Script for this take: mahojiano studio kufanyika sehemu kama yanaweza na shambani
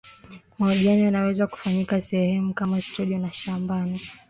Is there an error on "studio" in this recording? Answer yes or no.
yes